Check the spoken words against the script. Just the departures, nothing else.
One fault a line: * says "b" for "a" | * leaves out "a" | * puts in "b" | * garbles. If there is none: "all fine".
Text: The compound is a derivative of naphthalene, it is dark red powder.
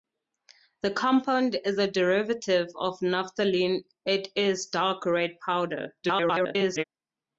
* garbles